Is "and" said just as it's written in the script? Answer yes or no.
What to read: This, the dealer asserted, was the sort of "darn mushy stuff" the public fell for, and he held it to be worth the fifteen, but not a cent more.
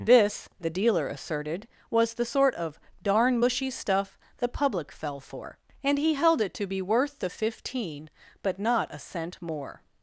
yes